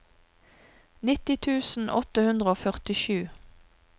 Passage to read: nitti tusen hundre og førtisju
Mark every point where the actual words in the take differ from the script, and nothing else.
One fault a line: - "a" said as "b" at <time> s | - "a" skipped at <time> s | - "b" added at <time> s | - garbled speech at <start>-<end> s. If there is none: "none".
- "åtte" added at 2.0 s